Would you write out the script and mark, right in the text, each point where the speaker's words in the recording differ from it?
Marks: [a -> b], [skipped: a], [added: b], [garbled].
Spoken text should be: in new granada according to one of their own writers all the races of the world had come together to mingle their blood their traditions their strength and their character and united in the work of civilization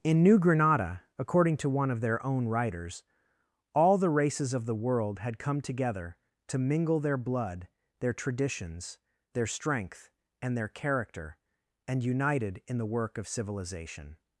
in new granada according to one of their own writers all the races of the world had come together to mingle their blood their traditions their strength and their character and united in the work of civilization